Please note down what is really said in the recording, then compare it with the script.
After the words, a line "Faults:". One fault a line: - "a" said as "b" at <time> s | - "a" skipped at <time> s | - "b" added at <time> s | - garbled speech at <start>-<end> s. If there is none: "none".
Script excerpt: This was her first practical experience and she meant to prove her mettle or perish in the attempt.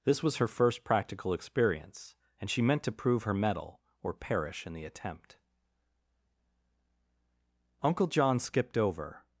This was her first practical experience and she meant to prove her mettle or perish in the attempt. Uncle John skipped over
Faults:
- "Uncle John skipped over" added at 7.8 s